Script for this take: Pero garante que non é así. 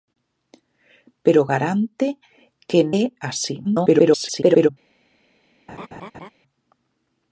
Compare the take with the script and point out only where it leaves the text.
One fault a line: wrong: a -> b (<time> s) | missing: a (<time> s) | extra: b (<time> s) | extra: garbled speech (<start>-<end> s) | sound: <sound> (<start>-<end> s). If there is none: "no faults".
missing: non (2.8 s)
extra: garbled speech (3.6-4.7 s)
sound: laugh (5.7-6.3 s)